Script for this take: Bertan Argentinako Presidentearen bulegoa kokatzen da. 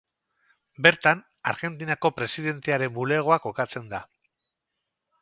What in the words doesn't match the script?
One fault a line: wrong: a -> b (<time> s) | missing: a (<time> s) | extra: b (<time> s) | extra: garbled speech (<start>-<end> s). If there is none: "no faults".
no faults